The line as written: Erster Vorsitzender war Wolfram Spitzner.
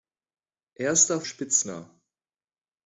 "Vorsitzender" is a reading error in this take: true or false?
true